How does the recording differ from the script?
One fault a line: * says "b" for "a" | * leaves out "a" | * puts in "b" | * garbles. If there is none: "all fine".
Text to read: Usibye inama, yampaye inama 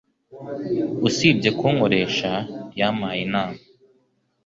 * says "kunkoresha" for "inama"